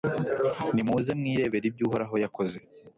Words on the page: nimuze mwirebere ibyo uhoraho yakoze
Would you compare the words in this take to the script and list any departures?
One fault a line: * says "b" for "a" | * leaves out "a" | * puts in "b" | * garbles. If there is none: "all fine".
all fine